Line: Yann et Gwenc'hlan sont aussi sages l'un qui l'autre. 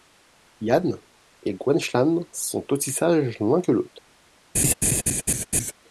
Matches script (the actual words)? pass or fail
fail